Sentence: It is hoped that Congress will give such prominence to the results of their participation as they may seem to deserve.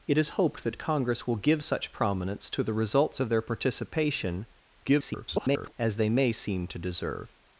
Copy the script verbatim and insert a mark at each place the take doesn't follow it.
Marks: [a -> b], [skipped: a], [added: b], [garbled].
It is hoped that Congress will give such prominence to the results of their participation [garbled] as they may seem to deserve.